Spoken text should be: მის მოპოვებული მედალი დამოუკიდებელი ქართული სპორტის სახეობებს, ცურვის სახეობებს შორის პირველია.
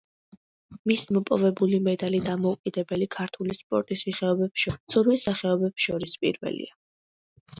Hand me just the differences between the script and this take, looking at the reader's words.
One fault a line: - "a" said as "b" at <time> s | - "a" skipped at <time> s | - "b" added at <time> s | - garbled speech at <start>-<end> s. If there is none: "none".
none